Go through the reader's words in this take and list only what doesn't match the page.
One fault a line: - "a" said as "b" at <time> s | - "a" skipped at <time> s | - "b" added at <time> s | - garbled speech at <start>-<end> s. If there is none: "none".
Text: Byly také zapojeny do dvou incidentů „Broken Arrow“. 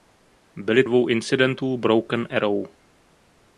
- "také zapojeny do" skipped at 0.8 s